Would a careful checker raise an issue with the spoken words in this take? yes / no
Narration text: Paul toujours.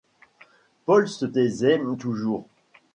yes